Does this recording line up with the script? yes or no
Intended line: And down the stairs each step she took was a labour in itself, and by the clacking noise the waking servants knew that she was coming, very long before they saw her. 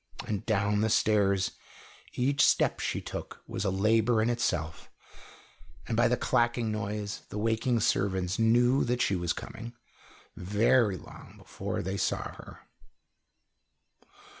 yes